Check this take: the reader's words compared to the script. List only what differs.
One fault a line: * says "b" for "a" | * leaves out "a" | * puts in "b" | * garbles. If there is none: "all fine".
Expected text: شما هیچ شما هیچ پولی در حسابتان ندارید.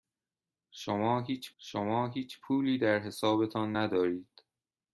all fine